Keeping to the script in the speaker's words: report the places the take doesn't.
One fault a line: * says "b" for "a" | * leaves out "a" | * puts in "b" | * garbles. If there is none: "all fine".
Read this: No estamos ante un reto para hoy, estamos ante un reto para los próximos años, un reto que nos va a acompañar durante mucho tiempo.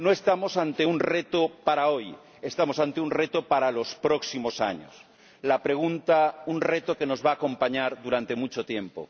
all fine